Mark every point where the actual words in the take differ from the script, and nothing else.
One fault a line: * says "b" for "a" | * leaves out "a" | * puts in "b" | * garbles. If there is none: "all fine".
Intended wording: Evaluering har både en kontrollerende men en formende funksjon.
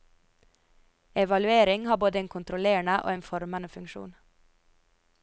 * says "og" for "men"